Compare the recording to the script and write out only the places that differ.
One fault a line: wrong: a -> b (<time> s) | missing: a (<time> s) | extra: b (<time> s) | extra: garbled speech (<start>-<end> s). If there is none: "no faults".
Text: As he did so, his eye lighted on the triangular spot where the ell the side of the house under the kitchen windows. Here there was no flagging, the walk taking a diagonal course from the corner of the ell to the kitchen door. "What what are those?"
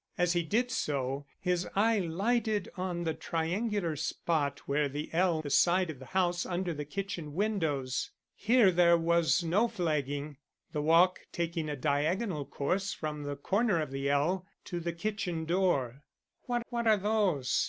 no faults